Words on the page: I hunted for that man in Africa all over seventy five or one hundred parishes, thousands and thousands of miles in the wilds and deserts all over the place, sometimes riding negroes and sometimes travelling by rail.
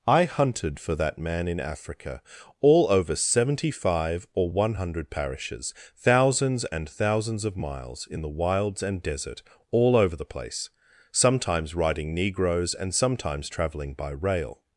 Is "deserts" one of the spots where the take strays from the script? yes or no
yes